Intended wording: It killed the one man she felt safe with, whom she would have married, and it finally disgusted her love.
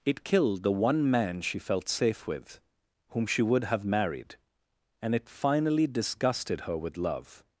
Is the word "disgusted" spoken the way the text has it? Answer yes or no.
yes